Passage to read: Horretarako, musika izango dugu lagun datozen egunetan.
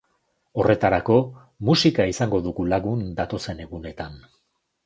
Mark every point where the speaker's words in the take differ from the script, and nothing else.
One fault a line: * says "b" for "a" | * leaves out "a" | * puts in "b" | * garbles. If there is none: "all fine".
all fine